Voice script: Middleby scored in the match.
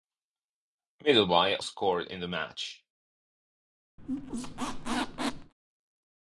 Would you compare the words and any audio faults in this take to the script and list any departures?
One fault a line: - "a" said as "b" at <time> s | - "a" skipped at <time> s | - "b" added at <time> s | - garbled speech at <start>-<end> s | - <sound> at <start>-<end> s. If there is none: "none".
- squeak at 4.0-5.5 s